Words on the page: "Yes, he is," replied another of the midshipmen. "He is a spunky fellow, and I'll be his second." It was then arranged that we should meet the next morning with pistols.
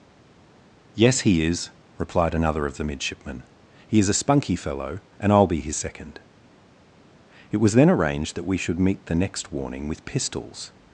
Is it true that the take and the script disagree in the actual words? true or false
true